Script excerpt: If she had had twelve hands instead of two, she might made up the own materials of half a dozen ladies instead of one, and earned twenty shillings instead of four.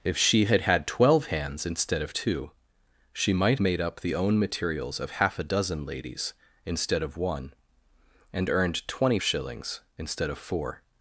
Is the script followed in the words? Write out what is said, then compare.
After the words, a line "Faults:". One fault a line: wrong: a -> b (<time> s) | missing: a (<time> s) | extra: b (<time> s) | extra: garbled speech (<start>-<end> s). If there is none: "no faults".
If she had had twelve hands instead of two, she might made up the own materials of half a dozen ladies instead of one, and earned twenty shillings instead of four.
Faults:
no faults